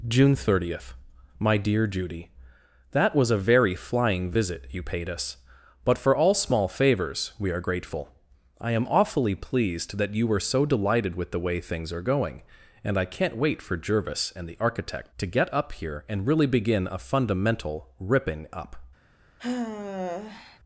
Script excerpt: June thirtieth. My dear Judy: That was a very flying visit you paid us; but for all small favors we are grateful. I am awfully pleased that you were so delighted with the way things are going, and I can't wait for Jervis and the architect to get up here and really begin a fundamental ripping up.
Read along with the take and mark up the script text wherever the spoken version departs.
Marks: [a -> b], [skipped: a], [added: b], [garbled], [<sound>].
June thirtieth. My dear Judy: That was a very flying visit you paid us; but for all small favors we are grateful. I am awfully pleased that you were so delighted with the way things are going, and I can't wait for Jervis and the architect to get up here and really begin a fundamental ripping up. [sigh]